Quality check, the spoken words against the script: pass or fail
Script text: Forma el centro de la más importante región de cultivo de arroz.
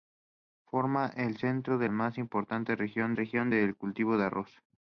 fail